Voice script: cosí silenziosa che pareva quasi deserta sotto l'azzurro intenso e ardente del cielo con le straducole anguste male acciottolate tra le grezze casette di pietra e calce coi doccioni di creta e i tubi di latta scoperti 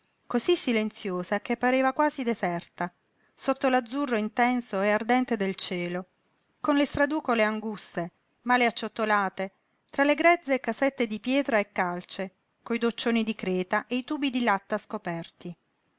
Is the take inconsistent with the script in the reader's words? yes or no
no